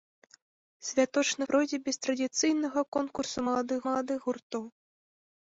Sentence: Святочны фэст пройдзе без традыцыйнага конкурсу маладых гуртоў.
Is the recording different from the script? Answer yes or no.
yes